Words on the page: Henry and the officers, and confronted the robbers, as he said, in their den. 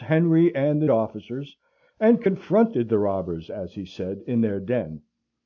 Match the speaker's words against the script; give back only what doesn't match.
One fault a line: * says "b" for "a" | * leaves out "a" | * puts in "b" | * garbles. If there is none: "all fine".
all fine